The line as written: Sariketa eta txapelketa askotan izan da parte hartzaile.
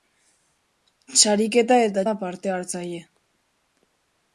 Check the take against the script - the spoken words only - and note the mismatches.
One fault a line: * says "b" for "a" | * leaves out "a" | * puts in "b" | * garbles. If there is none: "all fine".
* leaves out "txapelketa askotan izan"